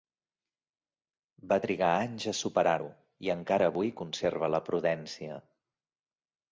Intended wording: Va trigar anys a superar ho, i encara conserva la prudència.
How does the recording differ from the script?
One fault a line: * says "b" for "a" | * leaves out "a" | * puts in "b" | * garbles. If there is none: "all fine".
* puts in "avui"